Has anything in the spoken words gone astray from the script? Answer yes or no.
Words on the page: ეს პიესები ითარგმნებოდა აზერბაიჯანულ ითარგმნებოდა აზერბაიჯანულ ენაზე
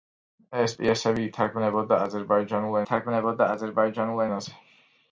no